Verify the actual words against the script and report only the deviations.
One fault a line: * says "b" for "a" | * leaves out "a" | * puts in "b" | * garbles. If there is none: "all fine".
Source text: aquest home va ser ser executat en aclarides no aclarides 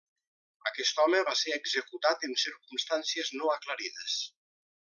* leaves out "ser"
* says "circumstàncies" for "aclarides"